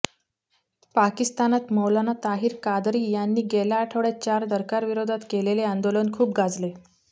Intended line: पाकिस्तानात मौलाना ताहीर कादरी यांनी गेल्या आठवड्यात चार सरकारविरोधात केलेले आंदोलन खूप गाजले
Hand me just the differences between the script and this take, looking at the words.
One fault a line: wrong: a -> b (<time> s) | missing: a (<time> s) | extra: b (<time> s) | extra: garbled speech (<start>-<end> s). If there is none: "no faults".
no faults